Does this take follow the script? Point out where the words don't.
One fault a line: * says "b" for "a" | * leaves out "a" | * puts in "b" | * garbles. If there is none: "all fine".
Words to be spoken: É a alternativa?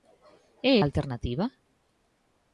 all fine